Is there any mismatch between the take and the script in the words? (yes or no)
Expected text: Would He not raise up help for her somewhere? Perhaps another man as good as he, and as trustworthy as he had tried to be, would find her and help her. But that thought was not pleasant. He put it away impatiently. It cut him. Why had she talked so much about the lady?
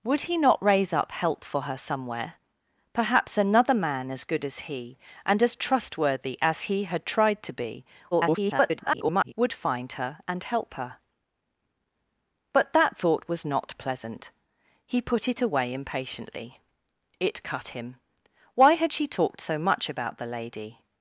yes